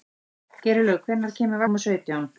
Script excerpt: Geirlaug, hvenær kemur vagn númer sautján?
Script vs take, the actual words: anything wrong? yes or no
yes